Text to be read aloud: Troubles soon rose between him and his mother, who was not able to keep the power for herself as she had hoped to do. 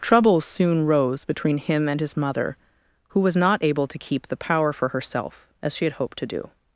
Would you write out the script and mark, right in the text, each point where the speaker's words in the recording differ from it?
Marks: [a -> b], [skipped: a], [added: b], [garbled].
Troubles soon rose between him and his mother, who was not able to keep the power for herself as she had hoped to do.